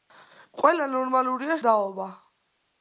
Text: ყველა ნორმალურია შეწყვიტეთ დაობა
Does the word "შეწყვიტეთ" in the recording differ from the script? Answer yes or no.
yes